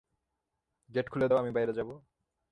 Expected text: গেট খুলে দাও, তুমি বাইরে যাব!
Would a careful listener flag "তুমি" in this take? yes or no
yes